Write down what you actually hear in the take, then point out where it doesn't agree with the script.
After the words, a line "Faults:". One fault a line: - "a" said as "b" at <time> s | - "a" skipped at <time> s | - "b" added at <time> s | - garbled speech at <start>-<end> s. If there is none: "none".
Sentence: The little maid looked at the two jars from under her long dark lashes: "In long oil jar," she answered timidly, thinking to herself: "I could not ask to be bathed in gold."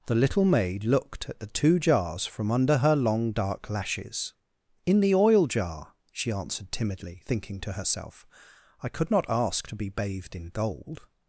The little maid looked at the two jars from under her long dark lashes: "In the oil jar," she answered timidly, thinking to herself: "I could not ask to be bathed in gold."
Faults:
- "long" said as "the" at 5.0 s